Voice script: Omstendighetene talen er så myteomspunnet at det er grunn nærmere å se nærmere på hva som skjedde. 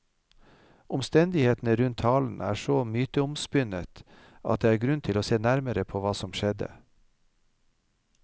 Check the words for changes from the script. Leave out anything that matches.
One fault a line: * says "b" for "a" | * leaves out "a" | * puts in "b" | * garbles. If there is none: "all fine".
* puts in "rundt"
* says "til" for "nærmere"